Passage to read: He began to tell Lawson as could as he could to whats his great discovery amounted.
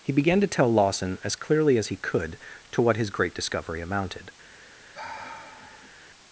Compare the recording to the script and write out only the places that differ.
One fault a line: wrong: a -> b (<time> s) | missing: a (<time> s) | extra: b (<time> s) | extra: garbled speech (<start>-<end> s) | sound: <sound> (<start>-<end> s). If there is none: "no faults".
wrong: could -> clearly (1.4 s)
wrong: whats -> what (2.8 s)
sound: sigh (4.9-5.9 s)